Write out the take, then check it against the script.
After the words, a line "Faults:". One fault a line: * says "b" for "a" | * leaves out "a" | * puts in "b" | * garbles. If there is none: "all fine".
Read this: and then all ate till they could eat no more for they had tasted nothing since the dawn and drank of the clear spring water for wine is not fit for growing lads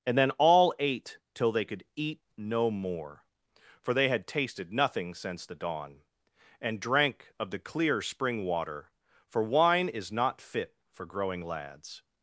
and then all ate till they could eat no more for they had tasted nothing since the dawn and drank of the clear spring water for wine is not fit for growing lads
Faults:
all fine